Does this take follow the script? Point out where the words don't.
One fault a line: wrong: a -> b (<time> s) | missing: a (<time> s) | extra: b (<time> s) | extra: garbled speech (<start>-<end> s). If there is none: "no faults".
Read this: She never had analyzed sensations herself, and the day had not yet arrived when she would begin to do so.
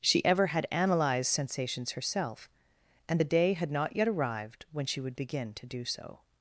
wrong: never -> ever (0.2 s)